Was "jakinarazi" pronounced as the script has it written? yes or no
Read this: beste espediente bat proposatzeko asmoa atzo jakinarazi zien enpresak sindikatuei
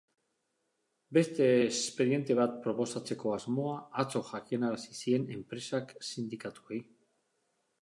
yes